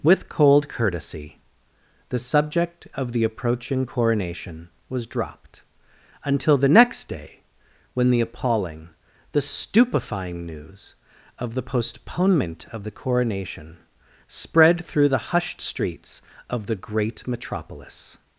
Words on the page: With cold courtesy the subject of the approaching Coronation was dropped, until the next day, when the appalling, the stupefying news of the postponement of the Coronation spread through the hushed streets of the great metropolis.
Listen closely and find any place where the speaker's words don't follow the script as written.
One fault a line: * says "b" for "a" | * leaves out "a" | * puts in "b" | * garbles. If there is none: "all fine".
all fine